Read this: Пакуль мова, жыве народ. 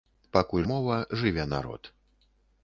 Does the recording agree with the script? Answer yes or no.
yes